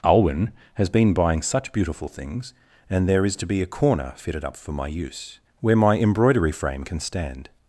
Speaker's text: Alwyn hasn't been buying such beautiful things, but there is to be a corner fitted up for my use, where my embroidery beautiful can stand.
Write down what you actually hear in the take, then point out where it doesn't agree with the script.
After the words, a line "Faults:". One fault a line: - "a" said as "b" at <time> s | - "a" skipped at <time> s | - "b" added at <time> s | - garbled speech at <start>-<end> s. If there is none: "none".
Alwyn has been buying such beautiful things, and there is to be a corner fitted up for my use, where my embroidery frame can stand.
Faults:
- "hasn't" said as "has" at 0.8 s
- "but" said as "and" at 2.9 s
- "beautiful" said as "frame" at 6.5 s